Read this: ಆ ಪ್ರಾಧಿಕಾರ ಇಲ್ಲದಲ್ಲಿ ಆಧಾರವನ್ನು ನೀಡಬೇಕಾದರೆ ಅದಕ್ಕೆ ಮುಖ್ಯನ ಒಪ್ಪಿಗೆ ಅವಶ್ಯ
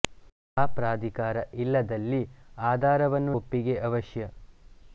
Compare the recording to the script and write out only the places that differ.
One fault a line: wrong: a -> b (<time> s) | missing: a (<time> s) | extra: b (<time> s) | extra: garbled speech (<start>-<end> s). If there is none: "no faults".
missing: ನೀಡಬೇಕಾದರೆ ಅದಕ್ಕೆ ಮುಖ್ಯನ (3.3 s)